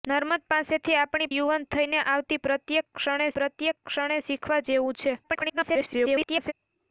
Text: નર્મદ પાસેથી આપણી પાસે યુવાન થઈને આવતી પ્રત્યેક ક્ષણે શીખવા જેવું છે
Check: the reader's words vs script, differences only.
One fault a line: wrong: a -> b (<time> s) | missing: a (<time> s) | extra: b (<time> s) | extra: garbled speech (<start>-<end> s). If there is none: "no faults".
missing: પાસે (1.3 s)
extra: પ્રત્યેક ક્ષણે (3.3 s)
extra: garbled speech (5.2-6.5 s)